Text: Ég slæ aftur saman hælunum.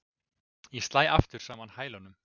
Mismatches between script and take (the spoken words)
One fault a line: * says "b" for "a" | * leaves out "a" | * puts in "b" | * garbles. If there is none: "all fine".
all fine